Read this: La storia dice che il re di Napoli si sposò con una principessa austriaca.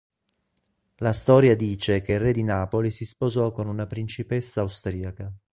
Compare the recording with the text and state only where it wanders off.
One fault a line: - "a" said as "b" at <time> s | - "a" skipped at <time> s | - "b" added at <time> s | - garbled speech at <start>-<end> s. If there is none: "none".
none